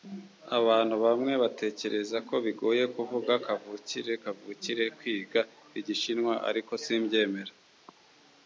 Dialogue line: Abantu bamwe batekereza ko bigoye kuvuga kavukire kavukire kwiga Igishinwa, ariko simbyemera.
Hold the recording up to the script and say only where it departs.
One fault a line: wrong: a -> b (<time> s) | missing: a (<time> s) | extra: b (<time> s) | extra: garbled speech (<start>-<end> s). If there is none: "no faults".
no faults